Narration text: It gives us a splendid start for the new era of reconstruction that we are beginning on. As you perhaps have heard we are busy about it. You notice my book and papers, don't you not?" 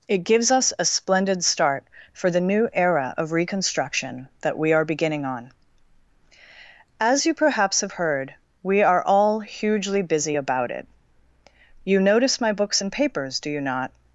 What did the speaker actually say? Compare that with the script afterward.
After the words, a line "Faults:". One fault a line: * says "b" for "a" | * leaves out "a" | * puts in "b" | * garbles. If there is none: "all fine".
It gives us a splendid start for the new era of reconstruction that we are beginning on. As you perhaps have heard we are all hugely busy about it. You notice my books and papers, do you not?"
Faults:
* puts in "all hugely"
* says "books" for "book"
* says "do" for "don't"